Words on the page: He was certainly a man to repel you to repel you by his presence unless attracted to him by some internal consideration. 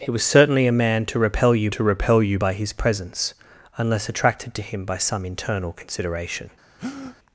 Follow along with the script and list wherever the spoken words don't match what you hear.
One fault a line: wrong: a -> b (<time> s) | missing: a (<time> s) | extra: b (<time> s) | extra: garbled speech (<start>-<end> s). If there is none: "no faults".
no faults